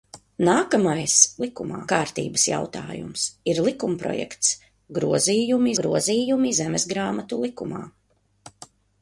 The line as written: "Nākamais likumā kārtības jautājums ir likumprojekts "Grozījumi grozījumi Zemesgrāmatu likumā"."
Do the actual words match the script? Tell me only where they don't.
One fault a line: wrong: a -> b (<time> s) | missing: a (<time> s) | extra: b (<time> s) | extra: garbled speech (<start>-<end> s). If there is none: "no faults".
no faults